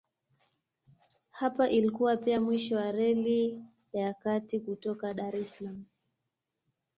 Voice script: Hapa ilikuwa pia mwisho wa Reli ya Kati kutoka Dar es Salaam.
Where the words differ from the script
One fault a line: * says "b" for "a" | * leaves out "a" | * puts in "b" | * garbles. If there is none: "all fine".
all fine